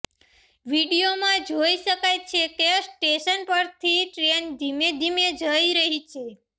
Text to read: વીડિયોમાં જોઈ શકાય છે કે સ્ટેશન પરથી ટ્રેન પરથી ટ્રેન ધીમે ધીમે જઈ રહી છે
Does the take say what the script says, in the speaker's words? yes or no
no